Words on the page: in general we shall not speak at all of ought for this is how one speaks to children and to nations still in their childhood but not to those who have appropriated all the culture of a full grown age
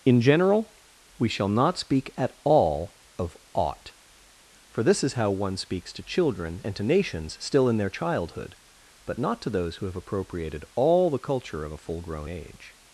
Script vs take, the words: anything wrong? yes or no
no